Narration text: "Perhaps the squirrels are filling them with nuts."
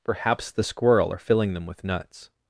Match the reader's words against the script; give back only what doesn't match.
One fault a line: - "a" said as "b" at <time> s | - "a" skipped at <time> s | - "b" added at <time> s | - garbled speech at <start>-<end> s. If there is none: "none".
- "squirrels" said as "squirrel" at 0.6 s